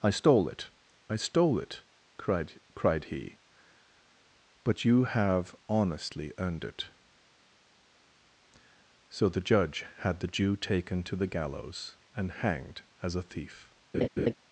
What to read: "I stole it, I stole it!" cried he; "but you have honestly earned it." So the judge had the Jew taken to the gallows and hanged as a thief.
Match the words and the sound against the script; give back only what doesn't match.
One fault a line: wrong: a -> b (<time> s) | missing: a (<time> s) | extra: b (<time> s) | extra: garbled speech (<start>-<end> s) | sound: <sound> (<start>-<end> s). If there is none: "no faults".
extra: cried (2.7 s)
sound: laugh (13.9-14.3 s)